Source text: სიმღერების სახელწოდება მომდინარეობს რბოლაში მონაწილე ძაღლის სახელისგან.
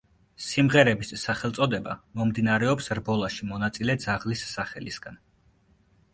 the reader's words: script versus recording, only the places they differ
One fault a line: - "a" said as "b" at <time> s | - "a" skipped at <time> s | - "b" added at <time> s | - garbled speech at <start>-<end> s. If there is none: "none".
none